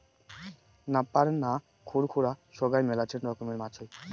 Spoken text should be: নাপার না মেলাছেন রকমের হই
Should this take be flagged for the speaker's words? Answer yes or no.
yes